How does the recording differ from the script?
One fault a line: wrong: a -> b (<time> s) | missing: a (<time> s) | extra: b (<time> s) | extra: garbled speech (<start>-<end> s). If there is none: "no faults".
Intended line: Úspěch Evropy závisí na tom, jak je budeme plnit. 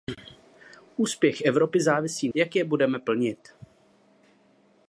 missing: na tom (2.3 s)